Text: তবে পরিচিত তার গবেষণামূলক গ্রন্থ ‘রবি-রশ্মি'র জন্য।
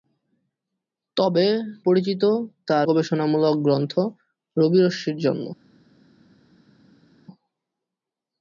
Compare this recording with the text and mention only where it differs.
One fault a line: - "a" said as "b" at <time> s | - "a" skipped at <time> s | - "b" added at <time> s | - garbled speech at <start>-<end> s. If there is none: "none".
none